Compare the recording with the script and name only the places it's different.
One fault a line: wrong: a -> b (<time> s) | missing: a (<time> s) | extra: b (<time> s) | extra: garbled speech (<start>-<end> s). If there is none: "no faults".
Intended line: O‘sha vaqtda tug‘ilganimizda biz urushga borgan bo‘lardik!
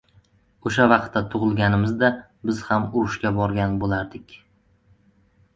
extra: ham (2.7 s)